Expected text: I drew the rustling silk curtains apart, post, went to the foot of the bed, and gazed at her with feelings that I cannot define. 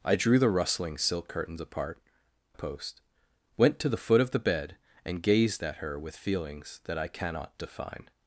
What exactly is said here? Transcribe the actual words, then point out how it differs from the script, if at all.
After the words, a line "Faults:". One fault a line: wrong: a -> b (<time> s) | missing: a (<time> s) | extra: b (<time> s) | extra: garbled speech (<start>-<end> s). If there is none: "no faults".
I drew the rustling silk curtains apart, post, went to the foot of the bed, and gazed at her with feelings that I cannot define.
Faults:
no faults